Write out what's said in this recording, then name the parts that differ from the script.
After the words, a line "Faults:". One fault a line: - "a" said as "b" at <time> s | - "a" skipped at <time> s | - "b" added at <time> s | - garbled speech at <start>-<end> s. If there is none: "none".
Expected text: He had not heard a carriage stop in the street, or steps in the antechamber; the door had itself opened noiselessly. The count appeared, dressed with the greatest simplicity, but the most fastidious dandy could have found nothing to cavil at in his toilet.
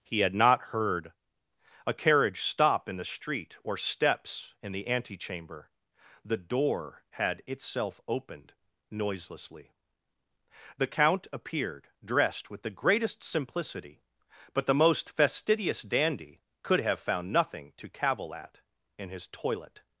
He had not heard a carriage stop in the street, or steps in the antechamber; the door had itself opened noiselessly. The count appeared, dressed with the greatest simplicity, but the most fastidious dandy could have found nothing to cavil at in his toilet.
Faults:
none